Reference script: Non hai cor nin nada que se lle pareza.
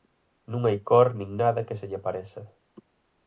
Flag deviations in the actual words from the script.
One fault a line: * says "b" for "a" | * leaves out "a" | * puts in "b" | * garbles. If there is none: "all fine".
all fine